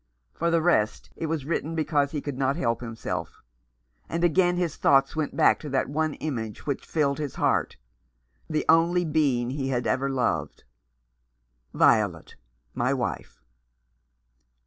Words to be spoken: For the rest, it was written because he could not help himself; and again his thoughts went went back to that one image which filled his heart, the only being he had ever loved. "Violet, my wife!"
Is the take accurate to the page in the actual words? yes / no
no